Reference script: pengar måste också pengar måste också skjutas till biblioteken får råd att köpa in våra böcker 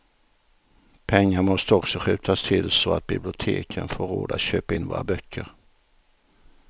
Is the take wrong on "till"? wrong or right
wrong